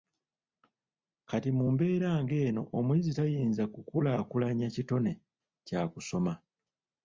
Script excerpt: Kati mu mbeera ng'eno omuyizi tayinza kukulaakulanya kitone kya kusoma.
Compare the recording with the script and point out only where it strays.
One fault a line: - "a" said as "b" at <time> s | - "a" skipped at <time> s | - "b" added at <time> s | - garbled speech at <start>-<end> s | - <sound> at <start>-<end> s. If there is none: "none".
none